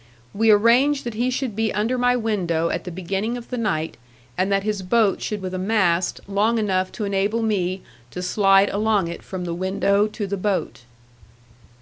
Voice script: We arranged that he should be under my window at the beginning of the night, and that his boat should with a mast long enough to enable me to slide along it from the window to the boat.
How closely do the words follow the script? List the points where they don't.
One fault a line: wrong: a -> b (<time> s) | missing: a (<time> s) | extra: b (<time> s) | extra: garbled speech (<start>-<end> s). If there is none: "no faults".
no faults